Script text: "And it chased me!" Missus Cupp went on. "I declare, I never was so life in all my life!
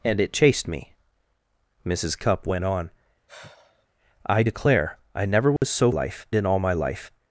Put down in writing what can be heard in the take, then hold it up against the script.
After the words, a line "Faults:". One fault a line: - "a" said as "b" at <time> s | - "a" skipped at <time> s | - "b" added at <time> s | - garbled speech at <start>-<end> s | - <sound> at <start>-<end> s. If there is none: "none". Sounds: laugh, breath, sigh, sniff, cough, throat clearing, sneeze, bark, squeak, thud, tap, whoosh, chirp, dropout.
"And it chased me!" Missus Cupp went on. "I declare, I never was so life in all my life!
Faults:
- sigh at 3.3-3.9 s
- dropout at 5.6-5.6 s